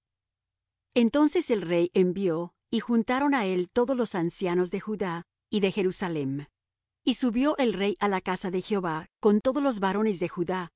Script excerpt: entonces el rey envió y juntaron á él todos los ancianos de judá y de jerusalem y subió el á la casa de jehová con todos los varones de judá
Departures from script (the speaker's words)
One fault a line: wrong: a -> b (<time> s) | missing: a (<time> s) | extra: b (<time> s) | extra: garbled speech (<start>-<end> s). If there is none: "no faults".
extra: rey (7.7 s)